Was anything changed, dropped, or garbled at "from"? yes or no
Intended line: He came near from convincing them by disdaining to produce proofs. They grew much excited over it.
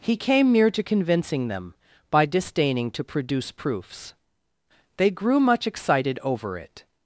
yes